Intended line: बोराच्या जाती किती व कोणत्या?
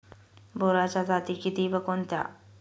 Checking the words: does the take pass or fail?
pass